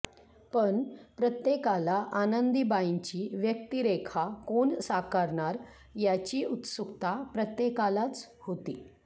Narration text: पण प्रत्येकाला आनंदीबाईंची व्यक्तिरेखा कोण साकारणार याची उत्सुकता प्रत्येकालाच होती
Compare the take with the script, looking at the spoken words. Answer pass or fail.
pass